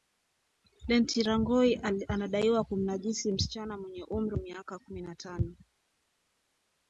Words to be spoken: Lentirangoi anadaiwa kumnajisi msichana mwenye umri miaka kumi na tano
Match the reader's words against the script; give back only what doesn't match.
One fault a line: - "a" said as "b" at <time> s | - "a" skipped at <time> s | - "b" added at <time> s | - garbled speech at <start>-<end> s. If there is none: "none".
none